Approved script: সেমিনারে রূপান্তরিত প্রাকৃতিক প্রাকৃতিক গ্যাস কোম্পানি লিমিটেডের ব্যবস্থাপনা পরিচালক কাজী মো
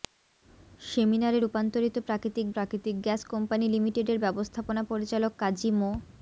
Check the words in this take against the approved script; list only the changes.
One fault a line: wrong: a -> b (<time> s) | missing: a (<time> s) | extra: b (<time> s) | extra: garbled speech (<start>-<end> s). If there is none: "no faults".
no faults